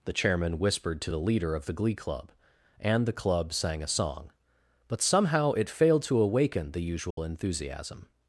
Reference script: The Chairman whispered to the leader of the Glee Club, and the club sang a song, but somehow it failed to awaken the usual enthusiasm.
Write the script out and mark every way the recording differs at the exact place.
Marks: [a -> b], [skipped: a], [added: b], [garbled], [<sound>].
The Chairman whispered to the leader of the Glee Club, and the club sang a song, but somehow it failed to awaken the usual [dropout] enthusiasm.